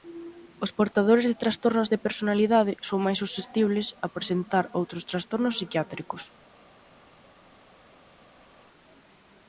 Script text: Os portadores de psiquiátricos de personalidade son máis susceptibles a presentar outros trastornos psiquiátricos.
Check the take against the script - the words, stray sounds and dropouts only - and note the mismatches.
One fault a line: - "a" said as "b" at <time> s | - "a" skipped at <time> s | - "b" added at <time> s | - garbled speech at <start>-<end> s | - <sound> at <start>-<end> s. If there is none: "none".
- "psiquiátricos" said as "trastornos" at 1.4 s